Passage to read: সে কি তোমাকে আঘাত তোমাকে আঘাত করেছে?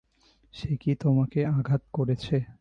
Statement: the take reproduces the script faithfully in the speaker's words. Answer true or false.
false